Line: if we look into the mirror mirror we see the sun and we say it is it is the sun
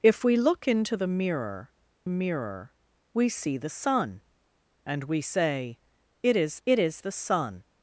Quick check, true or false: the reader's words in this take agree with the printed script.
true